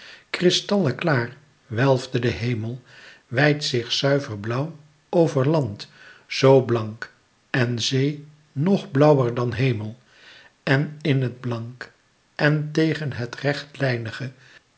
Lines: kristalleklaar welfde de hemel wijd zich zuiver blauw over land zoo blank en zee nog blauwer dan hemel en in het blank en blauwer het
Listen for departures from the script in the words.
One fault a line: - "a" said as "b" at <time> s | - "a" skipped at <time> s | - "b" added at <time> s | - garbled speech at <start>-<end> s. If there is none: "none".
- "blauwer" said as "tegen" at 12.7 s